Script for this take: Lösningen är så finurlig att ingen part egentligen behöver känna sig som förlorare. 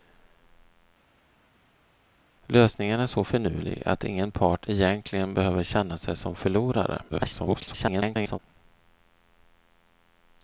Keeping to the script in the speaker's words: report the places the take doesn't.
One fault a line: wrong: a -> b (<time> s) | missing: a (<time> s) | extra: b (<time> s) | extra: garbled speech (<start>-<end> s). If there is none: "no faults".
extra: garbled speech (7.1-8.4 s)